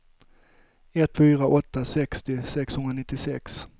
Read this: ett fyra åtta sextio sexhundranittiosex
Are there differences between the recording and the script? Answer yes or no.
no